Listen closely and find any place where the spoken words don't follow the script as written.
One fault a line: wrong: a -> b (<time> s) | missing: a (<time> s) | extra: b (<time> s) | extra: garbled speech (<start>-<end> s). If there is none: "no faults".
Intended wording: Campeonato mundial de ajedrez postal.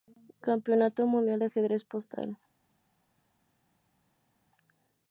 no faults